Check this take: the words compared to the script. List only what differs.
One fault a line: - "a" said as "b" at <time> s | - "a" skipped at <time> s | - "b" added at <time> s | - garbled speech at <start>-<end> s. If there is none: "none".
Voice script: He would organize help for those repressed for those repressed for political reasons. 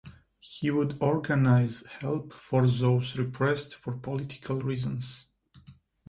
- "those repressed for" skipped at 4.0 s